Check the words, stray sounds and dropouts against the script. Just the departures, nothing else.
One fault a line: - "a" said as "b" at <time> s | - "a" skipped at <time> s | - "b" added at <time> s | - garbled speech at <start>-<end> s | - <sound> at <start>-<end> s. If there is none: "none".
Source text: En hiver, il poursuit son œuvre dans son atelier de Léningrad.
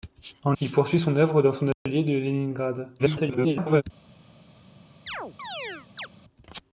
- "hiver" skipped at 0.6 s
- dropout at 1.7-1.9 s
- garbled speech at 3.0-3.8 s
- chirp at 5.1-6.1 s